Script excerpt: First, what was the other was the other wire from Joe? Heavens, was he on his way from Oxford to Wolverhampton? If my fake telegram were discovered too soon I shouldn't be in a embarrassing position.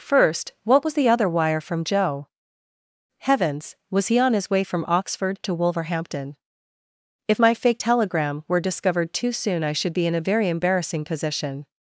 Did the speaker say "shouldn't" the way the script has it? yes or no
no